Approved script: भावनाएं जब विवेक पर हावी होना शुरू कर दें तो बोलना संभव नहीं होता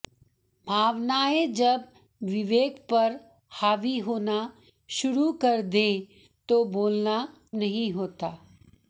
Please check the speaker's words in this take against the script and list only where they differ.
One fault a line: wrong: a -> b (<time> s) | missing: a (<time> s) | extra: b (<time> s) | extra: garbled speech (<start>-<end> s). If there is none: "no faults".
missing: संभव (7.2 s)